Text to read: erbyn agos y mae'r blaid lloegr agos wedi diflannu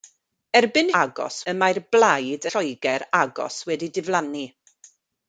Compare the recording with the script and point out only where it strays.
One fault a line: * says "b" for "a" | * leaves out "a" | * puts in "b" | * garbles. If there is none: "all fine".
all fine